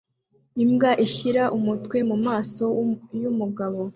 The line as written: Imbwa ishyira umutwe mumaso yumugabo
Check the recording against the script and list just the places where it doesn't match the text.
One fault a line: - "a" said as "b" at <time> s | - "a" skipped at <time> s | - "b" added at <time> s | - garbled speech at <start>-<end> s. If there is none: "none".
none